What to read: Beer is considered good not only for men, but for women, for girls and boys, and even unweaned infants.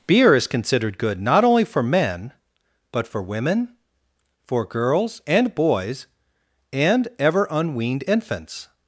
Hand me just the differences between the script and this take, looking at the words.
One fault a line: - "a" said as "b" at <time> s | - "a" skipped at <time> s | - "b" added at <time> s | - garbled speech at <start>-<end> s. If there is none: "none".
- "even" said as "ever" at 7.2 s